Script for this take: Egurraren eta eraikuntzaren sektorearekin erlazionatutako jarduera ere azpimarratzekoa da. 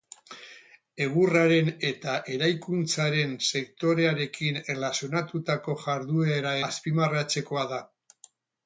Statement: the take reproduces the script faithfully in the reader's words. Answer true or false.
false